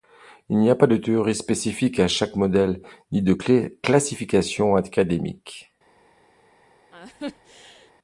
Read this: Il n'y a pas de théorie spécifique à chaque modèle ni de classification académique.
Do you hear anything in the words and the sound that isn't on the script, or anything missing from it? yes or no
yes